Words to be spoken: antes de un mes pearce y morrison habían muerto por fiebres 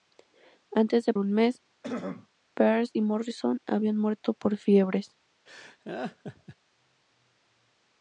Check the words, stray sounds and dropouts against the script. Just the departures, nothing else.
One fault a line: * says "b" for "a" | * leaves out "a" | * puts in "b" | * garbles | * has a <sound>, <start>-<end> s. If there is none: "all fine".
* has a throat clearing, 1.8-2.3 s
* has a laugh, 5.5-6.6 s